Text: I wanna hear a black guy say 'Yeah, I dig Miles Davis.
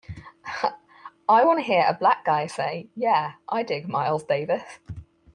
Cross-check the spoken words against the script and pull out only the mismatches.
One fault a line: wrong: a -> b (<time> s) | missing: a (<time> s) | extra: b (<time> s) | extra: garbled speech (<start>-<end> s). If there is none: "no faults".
no faults